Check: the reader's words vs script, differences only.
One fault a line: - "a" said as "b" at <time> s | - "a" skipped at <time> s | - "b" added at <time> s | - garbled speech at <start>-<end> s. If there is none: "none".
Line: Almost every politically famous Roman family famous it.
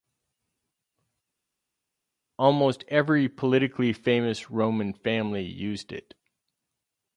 - "famous" said as "used" at 5.4 s